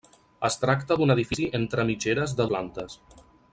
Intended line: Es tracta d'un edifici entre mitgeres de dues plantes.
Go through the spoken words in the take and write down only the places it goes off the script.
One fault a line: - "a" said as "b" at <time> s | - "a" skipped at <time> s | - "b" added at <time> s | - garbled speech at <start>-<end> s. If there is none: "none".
- "dues" skipped at 2.5 s